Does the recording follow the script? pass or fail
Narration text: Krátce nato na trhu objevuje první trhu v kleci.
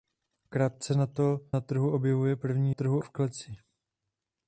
pass